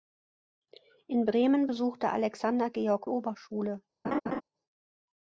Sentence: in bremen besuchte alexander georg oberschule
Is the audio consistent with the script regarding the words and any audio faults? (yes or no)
no